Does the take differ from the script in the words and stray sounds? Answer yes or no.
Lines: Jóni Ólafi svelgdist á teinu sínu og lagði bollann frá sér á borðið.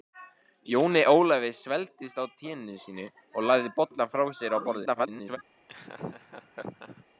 yes